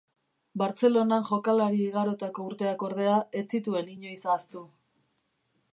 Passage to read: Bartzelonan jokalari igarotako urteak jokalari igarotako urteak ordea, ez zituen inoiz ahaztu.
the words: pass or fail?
fail